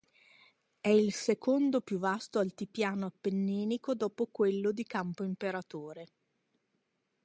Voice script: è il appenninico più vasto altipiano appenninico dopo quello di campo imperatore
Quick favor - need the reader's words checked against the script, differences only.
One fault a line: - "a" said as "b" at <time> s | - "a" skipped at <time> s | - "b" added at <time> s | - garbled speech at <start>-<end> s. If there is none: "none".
- "appenninico" said as "secondo" at 1.1 s